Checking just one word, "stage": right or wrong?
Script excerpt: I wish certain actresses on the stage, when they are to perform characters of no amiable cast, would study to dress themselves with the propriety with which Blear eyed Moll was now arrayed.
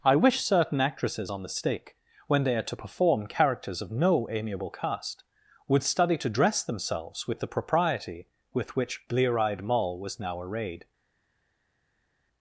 wrong